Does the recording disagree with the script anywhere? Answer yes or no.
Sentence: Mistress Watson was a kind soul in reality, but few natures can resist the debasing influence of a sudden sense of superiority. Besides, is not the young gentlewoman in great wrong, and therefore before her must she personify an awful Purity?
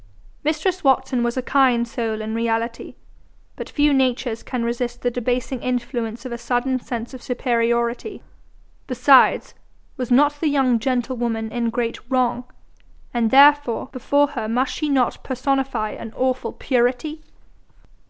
yes